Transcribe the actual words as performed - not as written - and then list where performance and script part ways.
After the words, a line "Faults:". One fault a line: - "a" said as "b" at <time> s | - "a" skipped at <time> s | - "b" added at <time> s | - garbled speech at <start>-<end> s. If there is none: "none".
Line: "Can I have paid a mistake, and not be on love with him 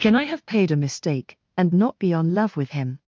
"Can I have paid a mistake, and not be on love with him
Faults:
none